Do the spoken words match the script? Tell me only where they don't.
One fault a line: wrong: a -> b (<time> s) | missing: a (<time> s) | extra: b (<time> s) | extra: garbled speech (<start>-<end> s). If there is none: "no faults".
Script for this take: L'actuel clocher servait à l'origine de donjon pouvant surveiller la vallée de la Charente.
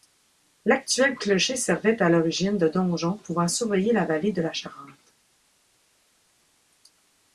no faults